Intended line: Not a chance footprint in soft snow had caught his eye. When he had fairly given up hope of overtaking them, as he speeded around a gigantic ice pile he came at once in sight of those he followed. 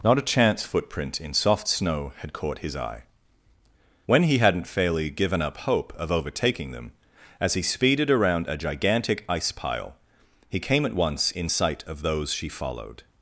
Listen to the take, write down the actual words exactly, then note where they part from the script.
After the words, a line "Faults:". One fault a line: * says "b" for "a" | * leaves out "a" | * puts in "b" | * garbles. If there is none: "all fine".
Not a chance footprint in soft snow had caught his eye. When he hadn't fairly given up hope of overtaking them, as he speeded around a gigantic ice pile he came at once in sight of those she followed.
Faults:
* says "hadn't" for "had"
* says "she" for "he"